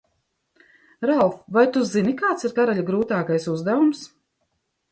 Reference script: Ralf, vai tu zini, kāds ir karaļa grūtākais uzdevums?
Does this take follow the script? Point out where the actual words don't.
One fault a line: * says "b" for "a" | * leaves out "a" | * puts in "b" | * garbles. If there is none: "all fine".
all fine